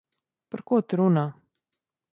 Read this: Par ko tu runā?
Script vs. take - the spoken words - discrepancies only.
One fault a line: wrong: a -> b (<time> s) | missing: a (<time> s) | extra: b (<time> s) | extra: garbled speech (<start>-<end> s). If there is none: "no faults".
no faults